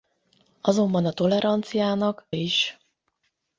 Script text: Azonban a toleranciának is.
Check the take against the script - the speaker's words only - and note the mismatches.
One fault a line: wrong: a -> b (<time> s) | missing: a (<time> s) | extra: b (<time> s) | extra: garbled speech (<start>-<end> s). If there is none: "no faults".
no faults